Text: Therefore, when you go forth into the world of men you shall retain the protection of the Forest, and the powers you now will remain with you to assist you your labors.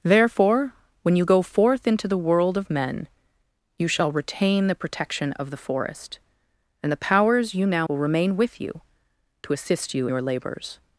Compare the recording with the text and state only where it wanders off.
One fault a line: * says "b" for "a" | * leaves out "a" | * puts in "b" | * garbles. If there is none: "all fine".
all fine